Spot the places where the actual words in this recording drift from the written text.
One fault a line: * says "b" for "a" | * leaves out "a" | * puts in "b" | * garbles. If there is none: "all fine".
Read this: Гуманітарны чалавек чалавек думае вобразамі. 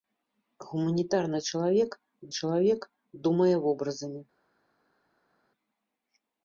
all fine